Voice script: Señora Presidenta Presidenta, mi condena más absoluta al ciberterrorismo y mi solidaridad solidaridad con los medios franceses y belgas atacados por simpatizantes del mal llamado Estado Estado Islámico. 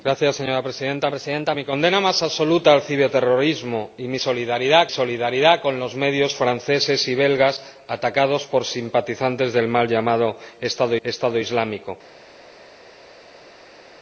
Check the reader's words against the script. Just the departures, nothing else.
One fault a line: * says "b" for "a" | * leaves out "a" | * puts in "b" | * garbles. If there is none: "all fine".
all fine